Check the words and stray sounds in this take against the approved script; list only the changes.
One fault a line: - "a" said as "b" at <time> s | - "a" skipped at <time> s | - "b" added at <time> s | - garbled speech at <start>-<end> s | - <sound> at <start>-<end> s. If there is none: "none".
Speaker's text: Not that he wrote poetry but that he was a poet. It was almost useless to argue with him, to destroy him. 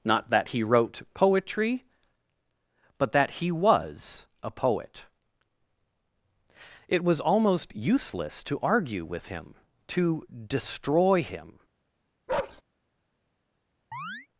- bark at 12.3-12.6 s
- chirp at 13.9-14.3 s